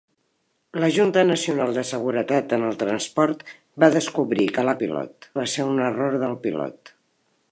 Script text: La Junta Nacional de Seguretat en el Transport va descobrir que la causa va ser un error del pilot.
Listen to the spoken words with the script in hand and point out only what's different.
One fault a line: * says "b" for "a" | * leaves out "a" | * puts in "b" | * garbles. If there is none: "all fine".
* says "pilot" for "causa"